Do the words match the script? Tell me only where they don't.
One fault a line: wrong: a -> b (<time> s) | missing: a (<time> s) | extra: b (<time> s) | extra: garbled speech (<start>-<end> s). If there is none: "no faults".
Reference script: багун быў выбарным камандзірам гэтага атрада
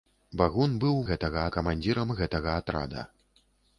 wrong: выбарным -> гэтага (1.1 s)